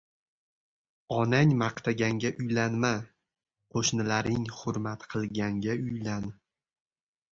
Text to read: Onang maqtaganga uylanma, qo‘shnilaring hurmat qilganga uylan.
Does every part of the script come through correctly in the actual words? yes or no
yes